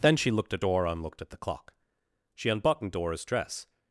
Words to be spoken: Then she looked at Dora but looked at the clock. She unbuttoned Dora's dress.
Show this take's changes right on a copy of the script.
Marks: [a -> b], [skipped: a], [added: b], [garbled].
Then she looked at Dora [but -> and] looked at the clock. She unbuttoned Dora's dress.